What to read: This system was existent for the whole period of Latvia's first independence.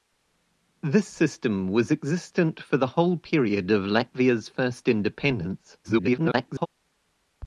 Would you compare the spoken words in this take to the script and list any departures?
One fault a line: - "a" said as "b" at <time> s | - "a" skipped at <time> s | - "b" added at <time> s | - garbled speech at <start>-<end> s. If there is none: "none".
- garbled speech at 5.8-6.7 s